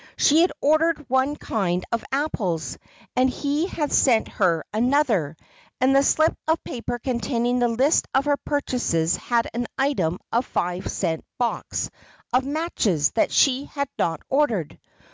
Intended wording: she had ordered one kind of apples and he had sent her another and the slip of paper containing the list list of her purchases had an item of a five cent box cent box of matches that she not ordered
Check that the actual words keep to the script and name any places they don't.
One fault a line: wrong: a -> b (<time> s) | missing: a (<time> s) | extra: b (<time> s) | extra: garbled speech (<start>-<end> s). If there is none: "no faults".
missing: list (8.1 s)
missing: cent box (11.9 s)
extra: had (13.7 s)